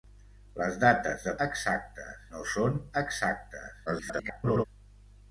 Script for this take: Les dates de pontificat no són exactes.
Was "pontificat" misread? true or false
true